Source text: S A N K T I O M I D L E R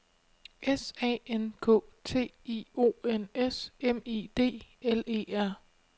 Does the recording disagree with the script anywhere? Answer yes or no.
yes